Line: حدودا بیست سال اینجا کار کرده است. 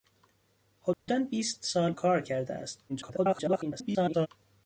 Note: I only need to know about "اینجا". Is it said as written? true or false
false